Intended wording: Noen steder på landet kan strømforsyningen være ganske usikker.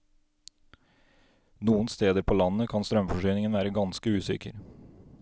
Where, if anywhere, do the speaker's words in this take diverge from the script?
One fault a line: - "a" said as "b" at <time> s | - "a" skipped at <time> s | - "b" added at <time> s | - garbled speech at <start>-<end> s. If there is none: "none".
none